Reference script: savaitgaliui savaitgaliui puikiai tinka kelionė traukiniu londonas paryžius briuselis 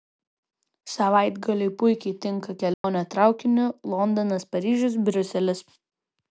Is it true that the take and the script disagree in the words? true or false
true